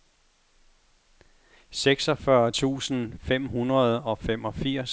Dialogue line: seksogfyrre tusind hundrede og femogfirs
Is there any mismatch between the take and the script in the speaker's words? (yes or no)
yes